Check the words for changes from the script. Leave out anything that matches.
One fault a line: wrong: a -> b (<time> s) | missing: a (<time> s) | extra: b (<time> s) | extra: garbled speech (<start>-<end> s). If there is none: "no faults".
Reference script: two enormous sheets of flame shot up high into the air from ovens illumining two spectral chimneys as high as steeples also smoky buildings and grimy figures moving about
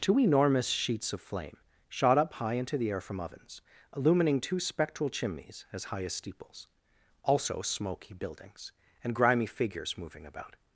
no faults